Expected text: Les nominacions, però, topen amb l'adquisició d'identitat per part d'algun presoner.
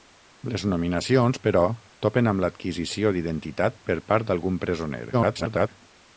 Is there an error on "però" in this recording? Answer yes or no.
no